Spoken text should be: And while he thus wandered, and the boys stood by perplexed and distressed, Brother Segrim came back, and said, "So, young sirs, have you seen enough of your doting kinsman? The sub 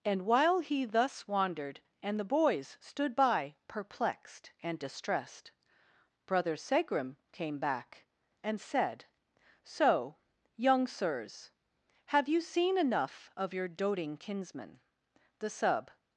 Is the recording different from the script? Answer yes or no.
no